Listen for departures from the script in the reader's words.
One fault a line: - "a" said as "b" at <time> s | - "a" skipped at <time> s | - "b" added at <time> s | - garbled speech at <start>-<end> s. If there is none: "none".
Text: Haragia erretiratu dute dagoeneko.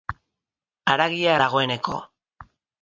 - "erretiratu dute" skipped at 1.4 s